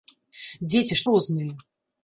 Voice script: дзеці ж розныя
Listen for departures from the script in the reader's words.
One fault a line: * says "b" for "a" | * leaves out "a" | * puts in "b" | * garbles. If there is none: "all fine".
all fine